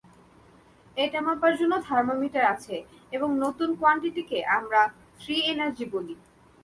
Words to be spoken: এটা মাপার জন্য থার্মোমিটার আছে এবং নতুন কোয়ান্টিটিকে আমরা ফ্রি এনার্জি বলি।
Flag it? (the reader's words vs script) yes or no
no